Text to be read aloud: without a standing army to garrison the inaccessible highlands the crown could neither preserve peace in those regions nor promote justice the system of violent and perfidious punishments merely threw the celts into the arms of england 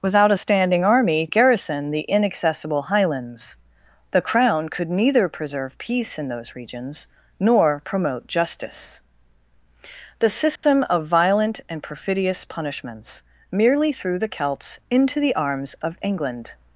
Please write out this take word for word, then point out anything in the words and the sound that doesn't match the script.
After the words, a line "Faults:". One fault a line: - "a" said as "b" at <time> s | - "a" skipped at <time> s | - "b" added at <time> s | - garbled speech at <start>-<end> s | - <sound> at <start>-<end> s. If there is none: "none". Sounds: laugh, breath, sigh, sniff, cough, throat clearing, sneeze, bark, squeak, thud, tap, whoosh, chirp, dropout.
without a standing army garrison the inaccessible highlands the crown could neither preserve peace in those regions nor promote justice the system of violent and perfidious punishments merely threw the celts into the arms of england
Faults:
- "to" skipped at 1.3 s
- dropout at 10.6-10.6 s